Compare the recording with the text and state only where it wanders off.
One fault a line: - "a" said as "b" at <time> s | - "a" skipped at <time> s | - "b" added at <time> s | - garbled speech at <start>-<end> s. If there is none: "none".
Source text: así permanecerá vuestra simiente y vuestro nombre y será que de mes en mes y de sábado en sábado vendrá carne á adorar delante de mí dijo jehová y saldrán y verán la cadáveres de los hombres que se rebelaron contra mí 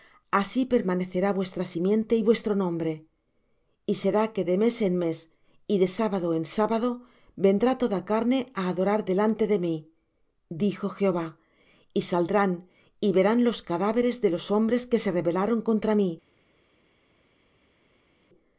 - "toda" added at 7.8 s
- "la" said as "los" at 13.5 s